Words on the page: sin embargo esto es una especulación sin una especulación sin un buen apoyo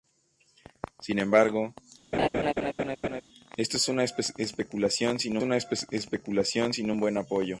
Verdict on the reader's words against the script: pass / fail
pass